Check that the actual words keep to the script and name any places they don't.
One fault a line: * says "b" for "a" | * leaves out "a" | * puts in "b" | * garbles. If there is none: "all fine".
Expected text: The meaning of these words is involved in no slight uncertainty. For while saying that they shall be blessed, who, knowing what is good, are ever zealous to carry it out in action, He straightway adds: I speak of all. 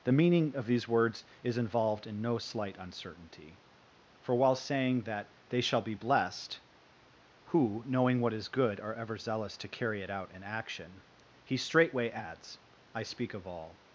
all fine